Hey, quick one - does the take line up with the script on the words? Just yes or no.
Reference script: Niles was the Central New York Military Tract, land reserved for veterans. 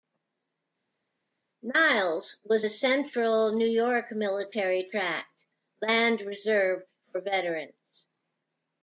yes